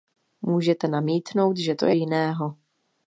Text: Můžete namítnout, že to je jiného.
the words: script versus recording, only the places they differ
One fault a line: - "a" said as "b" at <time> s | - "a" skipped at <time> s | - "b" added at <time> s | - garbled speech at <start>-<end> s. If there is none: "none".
none